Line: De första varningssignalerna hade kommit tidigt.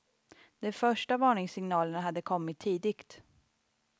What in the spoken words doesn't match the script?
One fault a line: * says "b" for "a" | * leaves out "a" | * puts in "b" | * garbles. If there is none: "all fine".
all fine